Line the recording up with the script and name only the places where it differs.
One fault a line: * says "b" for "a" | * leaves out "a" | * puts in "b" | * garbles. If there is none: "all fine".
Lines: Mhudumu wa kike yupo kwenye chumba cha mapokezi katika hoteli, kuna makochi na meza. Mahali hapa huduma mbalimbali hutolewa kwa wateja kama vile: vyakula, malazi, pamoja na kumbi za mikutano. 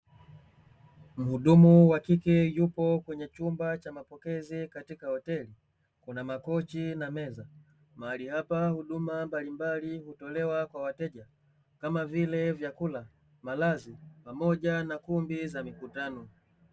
all fine